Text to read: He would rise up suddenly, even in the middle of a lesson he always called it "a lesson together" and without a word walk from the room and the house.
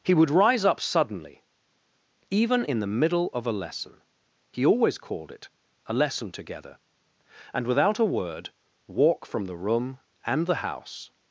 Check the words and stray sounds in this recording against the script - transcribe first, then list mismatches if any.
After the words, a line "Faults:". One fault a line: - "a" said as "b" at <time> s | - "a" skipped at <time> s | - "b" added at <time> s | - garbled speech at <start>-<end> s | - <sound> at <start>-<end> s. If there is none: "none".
He would rise up suddenly, even in the middle of a lesson he always called it "a lesson together" and without a word walk from the room and the house.
Faults:
none